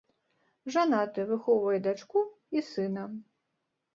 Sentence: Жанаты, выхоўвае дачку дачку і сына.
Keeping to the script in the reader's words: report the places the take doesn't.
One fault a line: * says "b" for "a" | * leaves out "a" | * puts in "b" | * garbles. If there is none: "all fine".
* leaves out "дачку"